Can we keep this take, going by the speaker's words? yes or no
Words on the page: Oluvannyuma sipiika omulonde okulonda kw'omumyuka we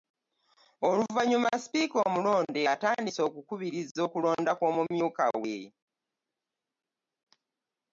no